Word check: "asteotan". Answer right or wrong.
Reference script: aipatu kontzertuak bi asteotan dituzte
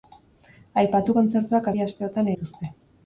right